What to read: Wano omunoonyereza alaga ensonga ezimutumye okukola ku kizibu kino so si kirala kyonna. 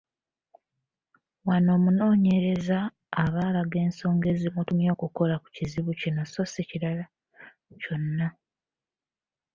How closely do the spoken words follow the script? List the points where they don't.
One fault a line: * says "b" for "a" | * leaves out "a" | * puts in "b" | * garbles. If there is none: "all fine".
* puts in "aba"